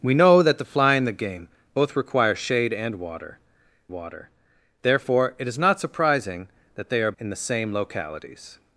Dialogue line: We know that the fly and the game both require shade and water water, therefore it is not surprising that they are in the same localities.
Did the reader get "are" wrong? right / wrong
right